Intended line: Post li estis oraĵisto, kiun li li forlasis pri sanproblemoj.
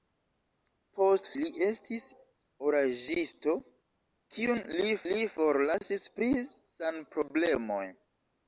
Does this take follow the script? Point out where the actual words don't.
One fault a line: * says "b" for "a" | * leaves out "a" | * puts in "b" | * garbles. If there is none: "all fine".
all fine